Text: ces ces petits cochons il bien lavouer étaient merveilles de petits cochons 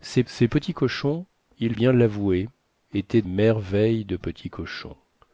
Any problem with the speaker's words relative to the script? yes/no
no